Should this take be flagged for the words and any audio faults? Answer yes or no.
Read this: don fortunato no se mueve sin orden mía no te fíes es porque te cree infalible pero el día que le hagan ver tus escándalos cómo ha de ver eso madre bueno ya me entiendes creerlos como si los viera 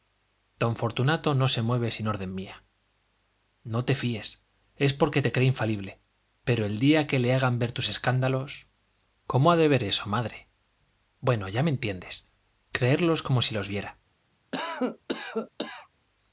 yes